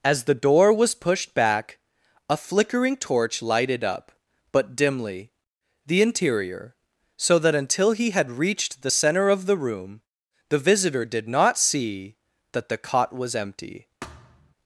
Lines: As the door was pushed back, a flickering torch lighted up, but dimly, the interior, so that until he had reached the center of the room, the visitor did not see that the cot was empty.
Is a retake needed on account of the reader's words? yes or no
no